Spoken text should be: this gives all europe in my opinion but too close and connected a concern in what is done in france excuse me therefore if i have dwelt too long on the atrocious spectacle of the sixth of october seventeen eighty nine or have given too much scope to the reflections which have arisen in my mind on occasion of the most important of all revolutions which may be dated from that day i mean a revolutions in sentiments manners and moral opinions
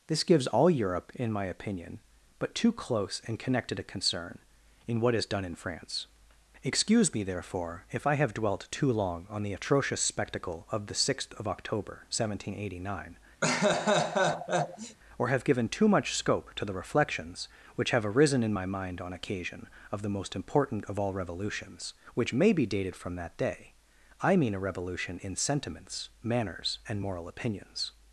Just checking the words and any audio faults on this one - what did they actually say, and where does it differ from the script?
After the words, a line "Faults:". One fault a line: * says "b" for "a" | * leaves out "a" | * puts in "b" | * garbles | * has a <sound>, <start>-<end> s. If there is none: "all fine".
this gives all europe in my opinion but too close and connected a concern in what is done in france excuse me therefore if i have dwelt too long on the atrocious spectacle of the sixth of october seventeen eighty nine or have given too much scope to the reflections which have arisen in my mind on occasion of the most important of all revolutions which may be dated from that day i mean a revolution in sentiments manners and moral opinions
Faults:
* has a laugh, 13.4-15.0 s
* says "revolution" for "revolutions"